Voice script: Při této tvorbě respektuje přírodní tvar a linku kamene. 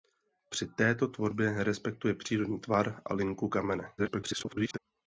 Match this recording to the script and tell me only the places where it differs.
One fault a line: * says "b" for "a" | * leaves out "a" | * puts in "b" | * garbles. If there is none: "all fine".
* garbles